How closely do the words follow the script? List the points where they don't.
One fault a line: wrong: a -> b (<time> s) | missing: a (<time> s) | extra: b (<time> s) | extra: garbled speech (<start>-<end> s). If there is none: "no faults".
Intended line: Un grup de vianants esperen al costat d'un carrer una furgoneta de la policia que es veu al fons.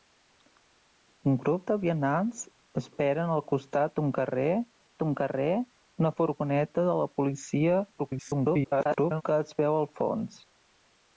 extra: d'un carrer (5.0 s)
extra: garbled speech (8.0-9.2 s)